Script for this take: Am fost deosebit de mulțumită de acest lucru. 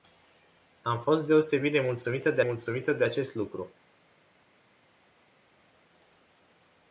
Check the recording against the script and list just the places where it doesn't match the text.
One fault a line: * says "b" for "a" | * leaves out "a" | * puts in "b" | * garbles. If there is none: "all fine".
* puts in "mulțumită de"